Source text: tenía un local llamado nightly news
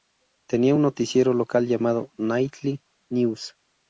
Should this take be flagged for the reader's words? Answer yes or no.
yes